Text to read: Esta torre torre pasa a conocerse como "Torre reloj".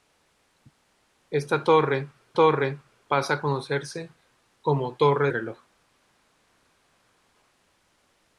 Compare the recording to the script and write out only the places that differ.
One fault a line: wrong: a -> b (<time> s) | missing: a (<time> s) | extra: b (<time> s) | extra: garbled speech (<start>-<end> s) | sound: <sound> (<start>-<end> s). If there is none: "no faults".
no faults